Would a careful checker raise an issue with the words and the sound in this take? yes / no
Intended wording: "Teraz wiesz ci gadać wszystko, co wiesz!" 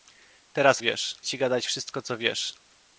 no